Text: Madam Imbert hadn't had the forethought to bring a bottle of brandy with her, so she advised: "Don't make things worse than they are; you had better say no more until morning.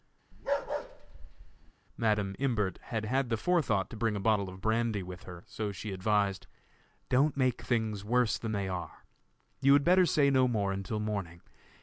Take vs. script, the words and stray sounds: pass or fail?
fail